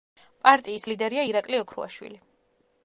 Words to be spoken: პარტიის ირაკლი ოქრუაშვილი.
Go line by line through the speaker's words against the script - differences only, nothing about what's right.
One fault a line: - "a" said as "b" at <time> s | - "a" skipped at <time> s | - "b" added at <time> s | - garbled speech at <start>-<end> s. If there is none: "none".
- "ლიდერია" added at 0.9 s